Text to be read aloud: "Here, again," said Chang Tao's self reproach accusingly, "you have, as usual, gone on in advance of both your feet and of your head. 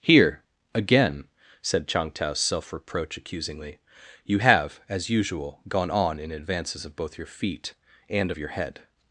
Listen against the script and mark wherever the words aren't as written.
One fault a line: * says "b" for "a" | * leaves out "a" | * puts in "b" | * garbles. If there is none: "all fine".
* says "advances" for "advance"